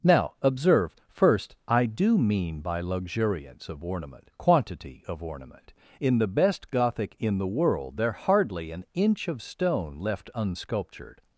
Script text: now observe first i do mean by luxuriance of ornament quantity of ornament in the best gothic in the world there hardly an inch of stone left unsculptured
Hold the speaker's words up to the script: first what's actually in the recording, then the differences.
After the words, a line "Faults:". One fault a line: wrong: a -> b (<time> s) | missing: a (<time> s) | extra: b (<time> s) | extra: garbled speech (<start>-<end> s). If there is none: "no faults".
now observe first i do mean by luxuriance of ornament quantity of ornament in the best gothic in the world there hardly an inch of stone left unsculptured
Faults:
no faults